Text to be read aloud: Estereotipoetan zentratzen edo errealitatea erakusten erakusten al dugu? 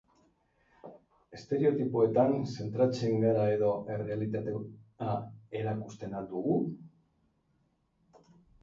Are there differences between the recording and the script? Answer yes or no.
yes